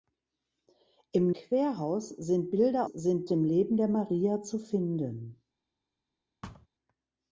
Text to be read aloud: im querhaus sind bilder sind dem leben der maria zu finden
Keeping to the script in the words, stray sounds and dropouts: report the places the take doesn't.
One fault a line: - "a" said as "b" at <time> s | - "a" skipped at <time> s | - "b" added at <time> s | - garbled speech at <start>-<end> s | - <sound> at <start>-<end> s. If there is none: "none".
- thud at 6.4-6.7 s